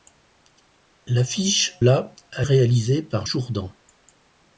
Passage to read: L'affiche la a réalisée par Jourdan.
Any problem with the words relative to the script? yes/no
no